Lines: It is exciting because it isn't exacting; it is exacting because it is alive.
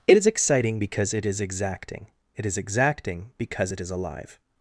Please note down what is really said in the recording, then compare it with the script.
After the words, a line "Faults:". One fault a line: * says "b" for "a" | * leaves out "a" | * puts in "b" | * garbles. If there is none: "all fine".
It is exciting because it is exacting; it is exacting because it is alive.
Faults:
* says "is" for "isn't"